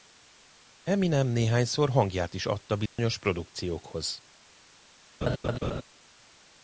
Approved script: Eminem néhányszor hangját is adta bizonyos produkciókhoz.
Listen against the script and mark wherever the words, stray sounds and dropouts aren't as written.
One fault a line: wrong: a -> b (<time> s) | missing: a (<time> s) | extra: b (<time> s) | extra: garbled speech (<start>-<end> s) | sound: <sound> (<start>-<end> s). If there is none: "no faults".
sound: dropout (2.9-3.0 s)
sound: laugh (5.2-5.8 s)